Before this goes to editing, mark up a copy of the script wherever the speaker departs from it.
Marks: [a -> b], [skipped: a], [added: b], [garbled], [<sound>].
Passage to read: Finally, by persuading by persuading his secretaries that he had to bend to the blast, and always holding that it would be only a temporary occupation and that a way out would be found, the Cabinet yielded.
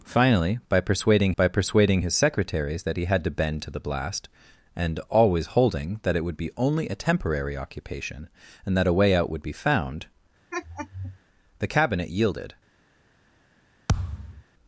Finally, by persuading by persuading his secretaries that he had to bend to the blast, and always holding that it would be only a temporary occupation and that a way out would be found, [laugh] the Cabinet yielded. [thud]